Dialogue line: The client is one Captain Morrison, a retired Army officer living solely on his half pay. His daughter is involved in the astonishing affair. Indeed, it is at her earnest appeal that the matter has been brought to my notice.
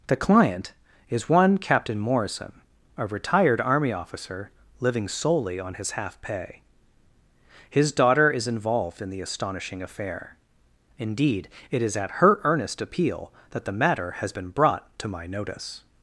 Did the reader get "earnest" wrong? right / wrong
right